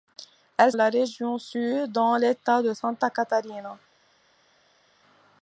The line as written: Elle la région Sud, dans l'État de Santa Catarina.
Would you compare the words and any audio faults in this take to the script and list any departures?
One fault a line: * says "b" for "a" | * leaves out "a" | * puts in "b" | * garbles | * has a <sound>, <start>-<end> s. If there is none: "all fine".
all fine